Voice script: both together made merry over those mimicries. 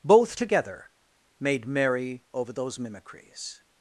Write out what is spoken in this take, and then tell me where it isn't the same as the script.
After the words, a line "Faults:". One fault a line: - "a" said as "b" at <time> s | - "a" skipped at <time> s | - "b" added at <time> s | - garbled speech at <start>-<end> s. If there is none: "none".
both together made merry over those mimicries.
Faults:
none